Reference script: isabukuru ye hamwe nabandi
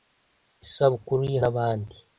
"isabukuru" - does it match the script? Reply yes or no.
yes